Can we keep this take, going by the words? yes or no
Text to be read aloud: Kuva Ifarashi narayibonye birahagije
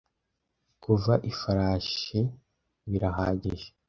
no